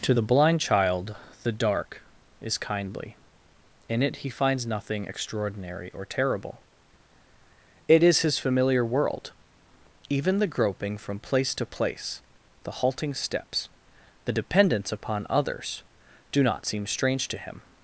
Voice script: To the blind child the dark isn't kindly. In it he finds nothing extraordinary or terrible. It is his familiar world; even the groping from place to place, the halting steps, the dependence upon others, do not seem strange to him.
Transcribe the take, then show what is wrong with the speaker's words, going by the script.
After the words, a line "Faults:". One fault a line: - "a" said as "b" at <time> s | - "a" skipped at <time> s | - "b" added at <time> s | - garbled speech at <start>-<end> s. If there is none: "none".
To the blind child the dark is kindly. In it he finds nothing extraordinary or terrible. It is his familiar world; even the groping from place to place, the halting steps, the dependence upon others, do not seem strange to him.
Faults:
- "isn't" said as "is" at 2.4 s